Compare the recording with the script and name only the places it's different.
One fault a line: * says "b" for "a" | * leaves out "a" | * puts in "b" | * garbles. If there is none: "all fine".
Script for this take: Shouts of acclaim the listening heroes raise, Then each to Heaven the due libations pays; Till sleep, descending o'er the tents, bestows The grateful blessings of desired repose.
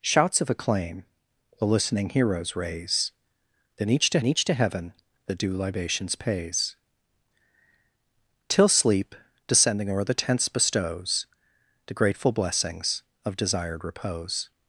* puts in "each to"